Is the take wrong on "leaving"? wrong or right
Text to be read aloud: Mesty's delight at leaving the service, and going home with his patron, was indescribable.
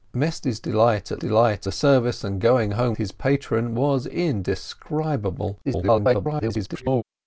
wrong